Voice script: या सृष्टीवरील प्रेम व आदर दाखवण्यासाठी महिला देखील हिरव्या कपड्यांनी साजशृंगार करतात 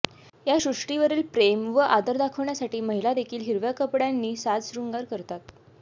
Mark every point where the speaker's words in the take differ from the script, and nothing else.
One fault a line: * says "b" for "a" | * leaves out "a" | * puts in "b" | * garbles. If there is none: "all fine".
all fine